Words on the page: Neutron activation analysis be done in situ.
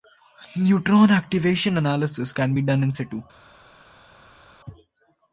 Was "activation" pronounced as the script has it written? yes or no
yes